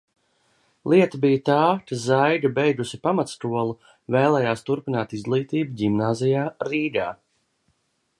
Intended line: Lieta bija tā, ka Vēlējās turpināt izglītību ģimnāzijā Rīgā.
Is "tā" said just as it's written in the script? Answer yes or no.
yes